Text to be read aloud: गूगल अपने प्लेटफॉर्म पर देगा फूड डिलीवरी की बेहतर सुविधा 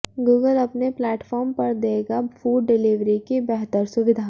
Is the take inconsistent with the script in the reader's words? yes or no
no